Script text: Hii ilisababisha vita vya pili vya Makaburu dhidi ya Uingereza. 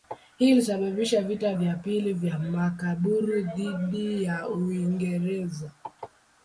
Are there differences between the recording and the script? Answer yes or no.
no